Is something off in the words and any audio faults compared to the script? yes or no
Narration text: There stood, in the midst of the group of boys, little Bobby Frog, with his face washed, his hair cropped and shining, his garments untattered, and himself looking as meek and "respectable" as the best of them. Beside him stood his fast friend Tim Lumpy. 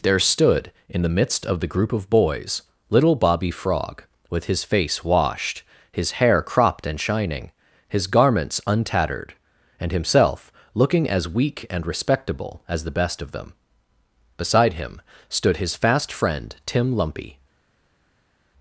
yes